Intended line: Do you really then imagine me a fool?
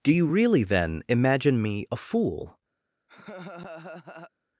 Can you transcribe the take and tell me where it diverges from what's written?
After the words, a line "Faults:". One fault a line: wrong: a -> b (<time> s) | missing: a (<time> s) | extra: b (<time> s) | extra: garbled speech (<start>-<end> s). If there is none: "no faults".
Do you really then imagine me a fool?
Faults:
no faults